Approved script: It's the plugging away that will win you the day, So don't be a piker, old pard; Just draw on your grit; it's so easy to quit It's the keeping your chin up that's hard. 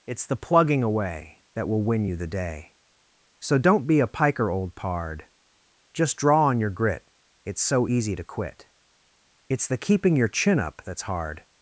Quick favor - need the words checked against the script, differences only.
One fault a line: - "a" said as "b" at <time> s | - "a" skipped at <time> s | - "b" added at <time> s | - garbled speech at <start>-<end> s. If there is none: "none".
none